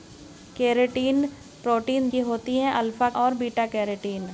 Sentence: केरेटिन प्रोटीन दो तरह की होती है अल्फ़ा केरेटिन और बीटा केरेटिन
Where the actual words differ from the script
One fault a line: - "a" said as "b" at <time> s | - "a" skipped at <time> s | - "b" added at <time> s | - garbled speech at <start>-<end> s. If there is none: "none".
- "दो तरह" skipped at 2.1 s
- "केरेटिन" skipped at 3.1 s